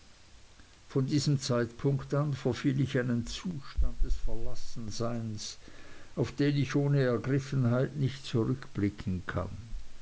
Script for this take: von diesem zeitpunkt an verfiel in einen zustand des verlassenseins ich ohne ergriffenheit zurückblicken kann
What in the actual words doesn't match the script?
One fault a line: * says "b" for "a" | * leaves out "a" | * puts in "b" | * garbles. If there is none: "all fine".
* puts in "ich"
* puts in "auf den"
* puts in "nicht"